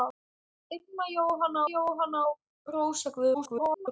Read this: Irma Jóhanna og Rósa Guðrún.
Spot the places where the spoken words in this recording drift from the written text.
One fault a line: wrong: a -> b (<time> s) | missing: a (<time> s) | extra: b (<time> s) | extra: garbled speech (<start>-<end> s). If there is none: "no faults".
extra: Jóhanna (1.7 s)
extra: garbled speech (3.3-3.9 s)